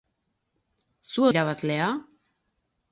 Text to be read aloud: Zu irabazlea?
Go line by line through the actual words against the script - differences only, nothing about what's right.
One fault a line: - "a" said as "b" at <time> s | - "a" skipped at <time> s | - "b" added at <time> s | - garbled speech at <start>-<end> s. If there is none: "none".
none